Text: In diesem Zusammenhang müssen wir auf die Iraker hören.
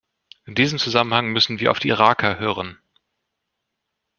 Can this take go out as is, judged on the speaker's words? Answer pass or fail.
pass